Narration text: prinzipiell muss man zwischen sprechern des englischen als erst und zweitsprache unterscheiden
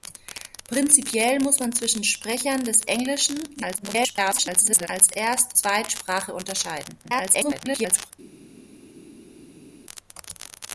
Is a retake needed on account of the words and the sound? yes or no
yes